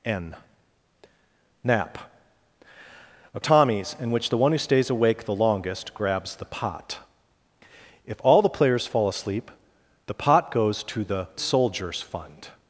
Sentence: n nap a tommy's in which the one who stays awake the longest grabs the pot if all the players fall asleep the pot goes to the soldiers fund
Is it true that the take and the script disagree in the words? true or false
false